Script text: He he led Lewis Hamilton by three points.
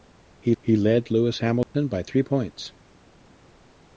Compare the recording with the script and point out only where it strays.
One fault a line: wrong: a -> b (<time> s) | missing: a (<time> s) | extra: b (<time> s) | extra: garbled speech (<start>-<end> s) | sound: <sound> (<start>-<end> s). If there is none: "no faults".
sound: dropout (1.6-1.7 s)